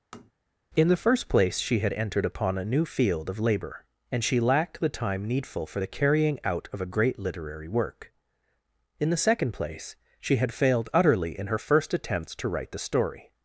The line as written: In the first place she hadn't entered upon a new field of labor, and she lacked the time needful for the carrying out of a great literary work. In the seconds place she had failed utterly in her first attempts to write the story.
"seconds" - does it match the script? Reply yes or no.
no